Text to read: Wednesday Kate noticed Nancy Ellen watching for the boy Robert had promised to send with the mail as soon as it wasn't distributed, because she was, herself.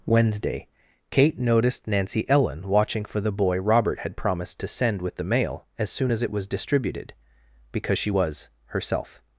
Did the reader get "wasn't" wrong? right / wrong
wrong